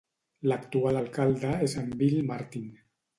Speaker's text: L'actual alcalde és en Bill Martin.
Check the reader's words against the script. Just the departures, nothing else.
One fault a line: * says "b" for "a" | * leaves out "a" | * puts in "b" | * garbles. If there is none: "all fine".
all fine